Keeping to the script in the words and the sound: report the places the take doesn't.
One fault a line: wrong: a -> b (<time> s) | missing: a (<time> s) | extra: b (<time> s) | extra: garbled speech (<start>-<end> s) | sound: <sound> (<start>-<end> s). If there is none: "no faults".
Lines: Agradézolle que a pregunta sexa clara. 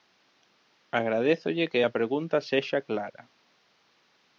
no faults